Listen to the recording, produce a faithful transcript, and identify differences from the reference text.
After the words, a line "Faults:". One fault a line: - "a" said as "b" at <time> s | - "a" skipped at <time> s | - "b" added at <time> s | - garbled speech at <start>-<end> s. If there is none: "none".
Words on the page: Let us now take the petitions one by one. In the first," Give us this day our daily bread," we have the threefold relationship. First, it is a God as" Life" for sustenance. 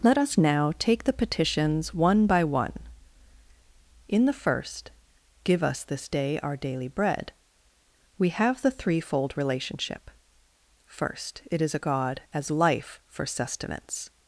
Let us now take the petitions one by one. In the first," Give us this day our daily bread," we have the threefold relationship. First, it is a God as" Life" for sustenance.
Faults:
none